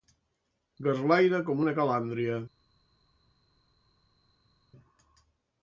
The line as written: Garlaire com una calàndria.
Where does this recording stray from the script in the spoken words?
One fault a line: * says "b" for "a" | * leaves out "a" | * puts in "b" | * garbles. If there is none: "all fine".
all fine